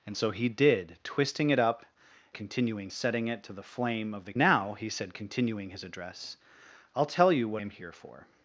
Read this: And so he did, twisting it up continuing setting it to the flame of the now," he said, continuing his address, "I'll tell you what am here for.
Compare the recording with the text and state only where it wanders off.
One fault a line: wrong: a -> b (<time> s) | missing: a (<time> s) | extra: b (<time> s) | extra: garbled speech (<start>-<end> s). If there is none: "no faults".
no faults